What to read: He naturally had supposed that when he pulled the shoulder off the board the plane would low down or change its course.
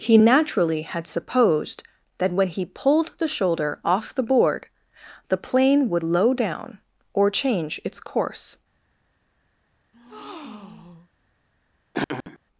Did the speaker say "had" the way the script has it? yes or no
yes